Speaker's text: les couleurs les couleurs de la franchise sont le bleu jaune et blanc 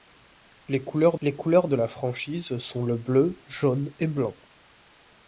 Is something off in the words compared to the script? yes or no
no